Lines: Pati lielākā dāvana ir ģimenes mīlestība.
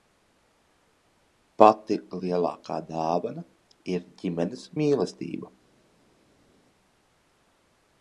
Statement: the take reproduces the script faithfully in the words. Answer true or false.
true